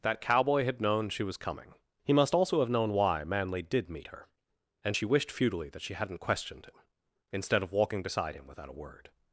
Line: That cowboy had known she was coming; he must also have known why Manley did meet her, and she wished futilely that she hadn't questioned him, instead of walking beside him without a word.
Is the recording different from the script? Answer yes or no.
no